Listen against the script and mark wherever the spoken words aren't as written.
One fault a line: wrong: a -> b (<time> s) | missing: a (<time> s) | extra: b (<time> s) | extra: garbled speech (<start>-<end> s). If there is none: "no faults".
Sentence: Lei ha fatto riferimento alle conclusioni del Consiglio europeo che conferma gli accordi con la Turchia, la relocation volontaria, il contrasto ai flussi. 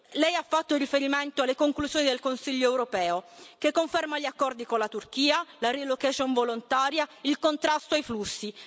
no faults